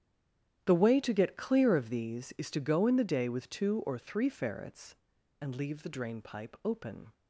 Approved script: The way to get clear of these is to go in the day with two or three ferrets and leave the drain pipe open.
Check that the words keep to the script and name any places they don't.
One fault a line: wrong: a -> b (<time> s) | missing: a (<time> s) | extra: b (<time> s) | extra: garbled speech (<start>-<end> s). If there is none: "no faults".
no faults